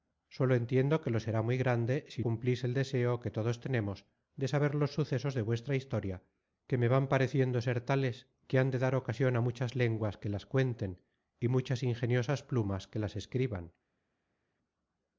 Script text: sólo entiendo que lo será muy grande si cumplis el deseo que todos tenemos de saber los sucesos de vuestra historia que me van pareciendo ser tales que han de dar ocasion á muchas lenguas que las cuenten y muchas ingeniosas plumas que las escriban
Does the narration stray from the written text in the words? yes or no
no